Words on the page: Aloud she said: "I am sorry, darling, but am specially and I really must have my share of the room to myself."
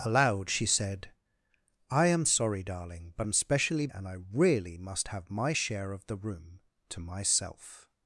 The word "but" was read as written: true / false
true